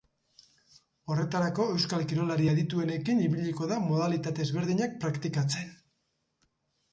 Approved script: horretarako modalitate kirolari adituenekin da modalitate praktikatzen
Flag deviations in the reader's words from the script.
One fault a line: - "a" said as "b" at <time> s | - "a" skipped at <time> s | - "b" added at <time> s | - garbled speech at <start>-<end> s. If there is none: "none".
- "modalitate" said as "euskal" at 1.7 s
- "ibiliko" added at 3.3 s
- "ezberdinak" added at 4.5 s